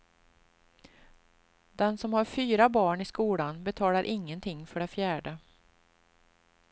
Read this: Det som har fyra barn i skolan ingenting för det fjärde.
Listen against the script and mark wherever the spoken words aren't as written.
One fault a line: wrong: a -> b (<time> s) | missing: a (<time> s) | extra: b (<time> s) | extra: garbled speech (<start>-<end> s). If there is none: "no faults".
wrong: Det -> Den (1.7 s)
extra: betalar (3.6 s)